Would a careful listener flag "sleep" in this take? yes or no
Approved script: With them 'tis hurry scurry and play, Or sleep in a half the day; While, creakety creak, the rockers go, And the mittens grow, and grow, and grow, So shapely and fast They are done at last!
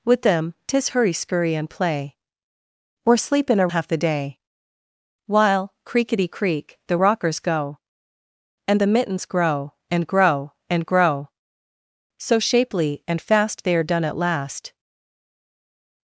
no